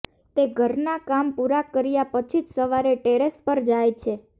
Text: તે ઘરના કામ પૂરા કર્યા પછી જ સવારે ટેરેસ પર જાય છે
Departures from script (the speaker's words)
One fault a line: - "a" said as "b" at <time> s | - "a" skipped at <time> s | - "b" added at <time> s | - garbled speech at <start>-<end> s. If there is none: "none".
none